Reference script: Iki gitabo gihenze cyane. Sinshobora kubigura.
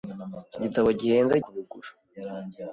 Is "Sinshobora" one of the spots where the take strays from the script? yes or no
yes